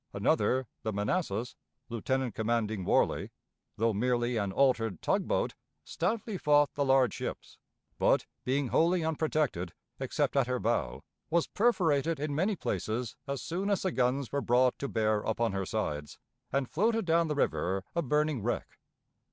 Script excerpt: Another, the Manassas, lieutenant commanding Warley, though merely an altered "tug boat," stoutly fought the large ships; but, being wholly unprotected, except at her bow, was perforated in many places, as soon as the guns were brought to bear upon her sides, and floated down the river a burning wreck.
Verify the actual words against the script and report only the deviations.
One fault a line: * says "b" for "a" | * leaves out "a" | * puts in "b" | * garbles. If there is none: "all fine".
all fine